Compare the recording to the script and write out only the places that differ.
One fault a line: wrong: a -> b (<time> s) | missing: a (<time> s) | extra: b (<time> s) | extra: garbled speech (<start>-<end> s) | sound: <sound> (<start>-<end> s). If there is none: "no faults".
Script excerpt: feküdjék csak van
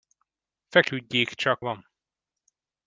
no faults